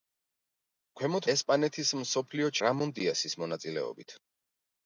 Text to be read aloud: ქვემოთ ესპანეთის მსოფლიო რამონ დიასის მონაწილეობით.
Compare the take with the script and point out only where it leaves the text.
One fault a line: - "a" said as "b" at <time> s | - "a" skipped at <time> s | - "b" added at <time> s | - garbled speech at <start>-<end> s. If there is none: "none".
none